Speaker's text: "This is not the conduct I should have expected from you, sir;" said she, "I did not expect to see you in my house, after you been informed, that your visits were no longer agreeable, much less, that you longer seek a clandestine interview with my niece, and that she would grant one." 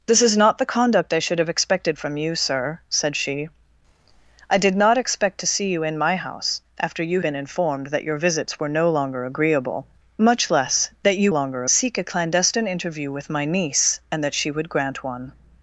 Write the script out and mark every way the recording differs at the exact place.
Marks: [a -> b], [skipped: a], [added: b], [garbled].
"This is not the conduct I should have expected from you, sir;" said she, "I did not expect to see you in my house, after you been informed, that your visits were no longer agreeable, much less, that you longer seek a clandestine interview with my niece, and that she would grant one."